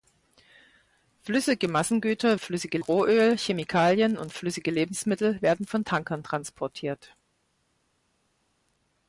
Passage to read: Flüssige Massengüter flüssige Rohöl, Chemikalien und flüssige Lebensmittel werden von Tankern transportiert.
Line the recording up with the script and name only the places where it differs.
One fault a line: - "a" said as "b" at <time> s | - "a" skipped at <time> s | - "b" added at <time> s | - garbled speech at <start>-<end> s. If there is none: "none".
none